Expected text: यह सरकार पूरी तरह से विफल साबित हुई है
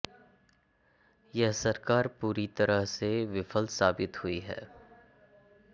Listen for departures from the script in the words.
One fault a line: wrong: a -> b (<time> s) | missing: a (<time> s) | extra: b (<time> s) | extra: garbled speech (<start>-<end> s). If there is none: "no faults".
no faults